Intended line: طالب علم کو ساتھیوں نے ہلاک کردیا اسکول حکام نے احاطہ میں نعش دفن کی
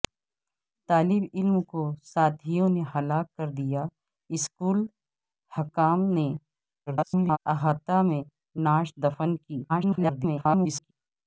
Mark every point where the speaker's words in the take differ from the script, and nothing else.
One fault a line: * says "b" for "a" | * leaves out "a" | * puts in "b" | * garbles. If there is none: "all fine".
* garbles
* garbles